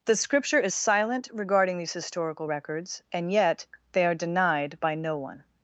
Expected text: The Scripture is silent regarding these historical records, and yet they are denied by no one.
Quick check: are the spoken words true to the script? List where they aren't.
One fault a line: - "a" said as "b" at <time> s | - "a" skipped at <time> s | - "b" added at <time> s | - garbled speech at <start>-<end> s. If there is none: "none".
none